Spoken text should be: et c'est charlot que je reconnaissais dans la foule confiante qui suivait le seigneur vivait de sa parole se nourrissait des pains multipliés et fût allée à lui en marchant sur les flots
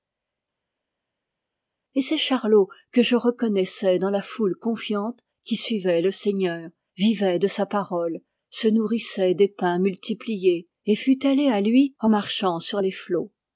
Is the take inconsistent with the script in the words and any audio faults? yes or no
no